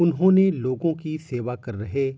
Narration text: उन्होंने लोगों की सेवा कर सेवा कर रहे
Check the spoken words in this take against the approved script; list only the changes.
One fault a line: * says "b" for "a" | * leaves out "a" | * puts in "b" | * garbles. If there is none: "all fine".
* leaves out "सेवा कर"